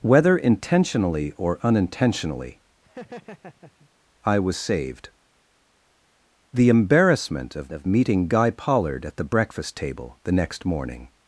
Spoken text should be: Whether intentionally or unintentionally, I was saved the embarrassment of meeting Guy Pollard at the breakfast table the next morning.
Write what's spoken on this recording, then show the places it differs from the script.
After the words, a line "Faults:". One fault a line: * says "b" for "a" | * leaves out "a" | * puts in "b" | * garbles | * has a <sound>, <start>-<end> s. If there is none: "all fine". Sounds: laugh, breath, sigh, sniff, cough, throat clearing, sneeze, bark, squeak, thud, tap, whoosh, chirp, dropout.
Whether intentionally or unintentionally, I was saved the embarrassment of of meeting Guy Pollard at the breakfast table the next morning.
Faults:
* has a laugh, 2.8-3.9 s
* puts in "of"